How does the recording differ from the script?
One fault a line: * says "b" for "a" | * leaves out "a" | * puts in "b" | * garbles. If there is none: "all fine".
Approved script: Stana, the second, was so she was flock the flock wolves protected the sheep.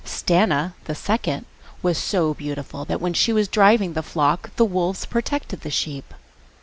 * puts in "beautiful that when"
* says "driving" for "flock"
* puts in "the"